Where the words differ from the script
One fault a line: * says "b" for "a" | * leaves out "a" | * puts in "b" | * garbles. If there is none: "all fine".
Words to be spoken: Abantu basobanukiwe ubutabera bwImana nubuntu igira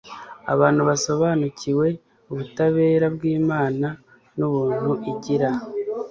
all fine